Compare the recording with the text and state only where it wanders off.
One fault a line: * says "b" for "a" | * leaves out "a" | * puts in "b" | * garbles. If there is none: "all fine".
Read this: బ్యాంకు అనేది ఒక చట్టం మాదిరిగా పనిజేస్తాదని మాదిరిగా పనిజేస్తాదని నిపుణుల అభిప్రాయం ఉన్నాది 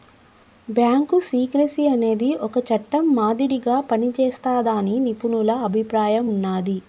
* puts in "సీక్రెసీ"
* leaves out "మాదిరిగా పనిజేస్తాదని"